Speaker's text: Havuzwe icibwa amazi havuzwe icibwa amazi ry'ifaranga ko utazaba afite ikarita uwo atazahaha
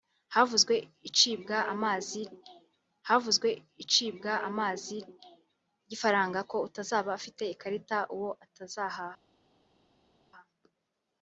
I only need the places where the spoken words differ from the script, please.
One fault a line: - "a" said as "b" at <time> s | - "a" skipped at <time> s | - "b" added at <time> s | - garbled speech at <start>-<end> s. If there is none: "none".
none